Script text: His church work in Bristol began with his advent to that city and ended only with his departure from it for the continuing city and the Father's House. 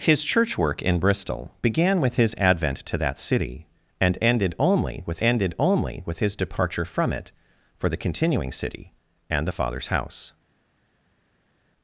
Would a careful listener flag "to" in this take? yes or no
no